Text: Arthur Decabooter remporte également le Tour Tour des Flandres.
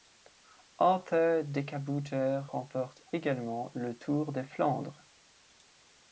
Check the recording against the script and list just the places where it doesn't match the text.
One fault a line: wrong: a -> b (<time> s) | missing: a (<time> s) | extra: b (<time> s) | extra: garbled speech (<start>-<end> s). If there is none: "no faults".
missing: Tour (4.3 s)